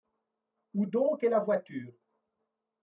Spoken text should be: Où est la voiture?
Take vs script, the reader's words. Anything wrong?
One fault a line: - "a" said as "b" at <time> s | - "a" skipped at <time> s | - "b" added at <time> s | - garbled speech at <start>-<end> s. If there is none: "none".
- "donc" added at 0.9 s